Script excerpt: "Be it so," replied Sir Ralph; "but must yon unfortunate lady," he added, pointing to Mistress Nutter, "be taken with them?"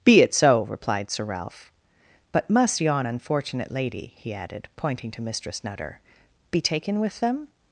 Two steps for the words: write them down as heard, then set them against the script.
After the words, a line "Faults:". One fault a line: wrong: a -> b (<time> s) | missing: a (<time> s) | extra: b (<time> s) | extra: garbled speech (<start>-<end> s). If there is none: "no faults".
"Be it so," replied Sir Ralph; "but must yon unfortunate lady," he added, pointing to Mistress Nutter, "be taken with them?"
Faults:
no faults